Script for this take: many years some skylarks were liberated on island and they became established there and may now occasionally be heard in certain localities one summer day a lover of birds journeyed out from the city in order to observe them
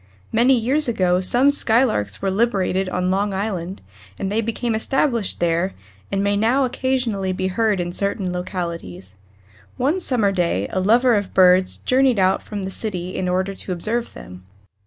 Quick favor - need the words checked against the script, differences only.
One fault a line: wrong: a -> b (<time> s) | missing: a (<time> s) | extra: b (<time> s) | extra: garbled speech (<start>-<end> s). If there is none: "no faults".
extra: ago (0.9 s)
extra: long (3.1 s)